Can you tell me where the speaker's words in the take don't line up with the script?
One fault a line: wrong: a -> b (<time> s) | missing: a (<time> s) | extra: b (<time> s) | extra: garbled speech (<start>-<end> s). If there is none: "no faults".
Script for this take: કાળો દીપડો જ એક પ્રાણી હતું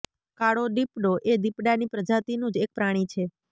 extra: એ દીપડાની પ્રજાતિનું (1.2 s)
wrong: હતું -> છે (3.1 s)